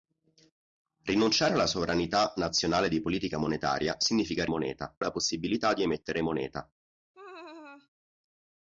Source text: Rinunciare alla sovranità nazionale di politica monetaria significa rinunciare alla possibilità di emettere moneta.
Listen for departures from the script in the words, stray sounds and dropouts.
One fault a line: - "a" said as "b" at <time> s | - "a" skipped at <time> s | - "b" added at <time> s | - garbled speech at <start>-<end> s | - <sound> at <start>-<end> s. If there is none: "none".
- "rinunciare" said as "moneta" at 4.5 s
- laugh at 7.1-7.9 s